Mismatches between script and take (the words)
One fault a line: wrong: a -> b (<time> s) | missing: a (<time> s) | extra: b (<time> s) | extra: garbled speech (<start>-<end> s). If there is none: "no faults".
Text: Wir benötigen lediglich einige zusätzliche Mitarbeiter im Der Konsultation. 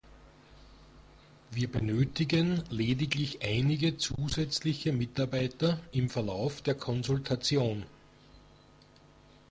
extra: Verlauf (6.1 s)